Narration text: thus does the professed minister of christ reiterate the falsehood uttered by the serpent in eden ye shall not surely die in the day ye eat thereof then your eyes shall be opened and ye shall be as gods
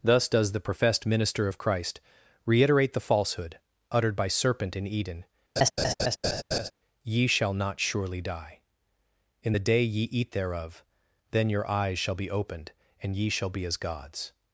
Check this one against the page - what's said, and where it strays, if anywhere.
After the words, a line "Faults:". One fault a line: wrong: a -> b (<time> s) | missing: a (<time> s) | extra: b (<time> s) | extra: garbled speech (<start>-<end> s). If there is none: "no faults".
thus does the professed minister of christ reiterate the falsehood uttered by serpent in eden ye shall not surely die in the day ye eat thereof then your eyes shall be opened and ye shall be as gods
Faults:
missing: the (4.3 s)